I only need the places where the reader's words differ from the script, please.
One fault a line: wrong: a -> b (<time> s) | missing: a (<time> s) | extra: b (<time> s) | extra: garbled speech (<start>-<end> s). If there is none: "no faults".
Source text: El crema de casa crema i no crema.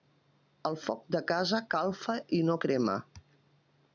wrong: crema -> foc (0.8 s)
wrong: crema -> calfa (1.8 s)